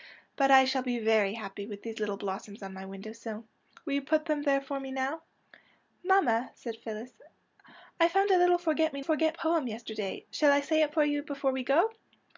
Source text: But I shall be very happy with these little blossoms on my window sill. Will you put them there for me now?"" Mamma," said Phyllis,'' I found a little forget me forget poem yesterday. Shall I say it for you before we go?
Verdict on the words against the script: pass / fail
pass